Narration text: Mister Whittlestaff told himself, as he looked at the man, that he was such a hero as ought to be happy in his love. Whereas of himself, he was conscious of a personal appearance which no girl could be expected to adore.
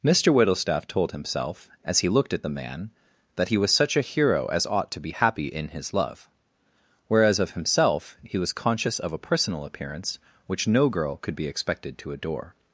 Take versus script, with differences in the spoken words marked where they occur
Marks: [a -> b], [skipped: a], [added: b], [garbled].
Mister Whittlestaff told himself, as he looked at the man, that he was such a hero as ought to be happy in his love. Whereas of himself, he was conscious of a personal appearance which no girl could be expected to adore.